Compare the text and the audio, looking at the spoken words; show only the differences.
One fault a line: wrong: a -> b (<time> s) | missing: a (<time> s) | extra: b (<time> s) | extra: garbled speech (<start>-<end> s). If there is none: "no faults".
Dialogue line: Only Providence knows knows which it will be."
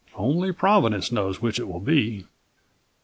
missing: knows (1.4 s)